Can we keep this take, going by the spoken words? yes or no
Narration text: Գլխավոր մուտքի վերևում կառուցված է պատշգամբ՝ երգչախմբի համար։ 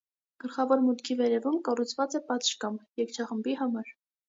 yes